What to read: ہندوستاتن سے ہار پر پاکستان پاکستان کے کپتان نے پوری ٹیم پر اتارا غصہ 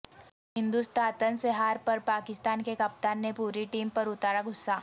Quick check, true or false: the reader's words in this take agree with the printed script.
false